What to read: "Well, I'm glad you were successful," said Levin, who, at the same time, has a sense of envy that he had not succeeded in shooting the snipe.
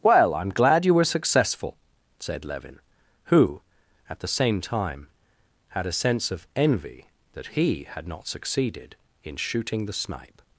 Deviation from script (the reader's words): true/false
true